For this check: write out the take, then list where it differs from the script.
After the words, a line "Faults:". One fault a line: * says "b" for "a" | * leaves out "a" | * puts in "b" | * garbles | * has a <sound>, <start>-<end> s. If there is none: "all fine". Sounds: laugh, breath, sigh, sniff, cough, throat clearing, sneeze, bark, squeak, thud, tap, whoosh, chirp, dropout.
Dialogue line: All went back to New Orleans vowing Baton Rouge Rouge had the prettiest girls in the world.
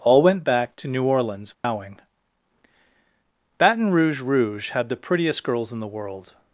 All went back to New Orleans vowing Baton Rouge Rouge had the prettiest girls in the world.
Faults:
* has a dropout, 1.5-1.6 s